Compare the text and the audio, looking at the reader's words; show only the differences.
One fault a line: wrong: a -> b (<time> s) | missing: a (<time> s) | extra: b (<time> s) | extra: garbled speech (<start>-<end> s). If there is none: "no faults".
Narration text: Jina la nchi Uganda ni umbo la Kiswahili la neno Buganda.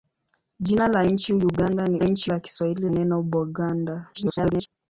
wrong: umbo -> nchi (2.0 s)
missing: la (2.9 s)
extra: garbled speech (4.1-4.7 s)